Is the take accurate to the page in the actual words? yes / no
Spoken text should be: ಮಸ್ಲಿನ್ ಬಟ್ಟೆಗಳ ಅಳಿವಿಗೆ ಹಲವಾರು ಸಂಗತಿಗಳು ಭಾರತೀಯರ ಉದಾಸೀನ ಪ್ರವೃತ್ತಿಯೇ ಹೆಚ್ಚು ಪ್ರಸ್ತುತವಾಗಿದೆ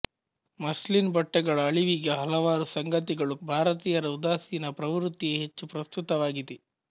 yes